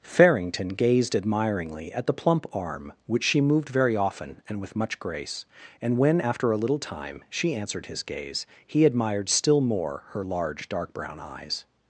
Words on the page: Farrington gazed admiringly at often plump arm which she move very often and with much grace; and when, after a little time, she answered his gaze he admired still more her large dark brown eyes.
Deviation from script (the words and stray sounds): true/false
true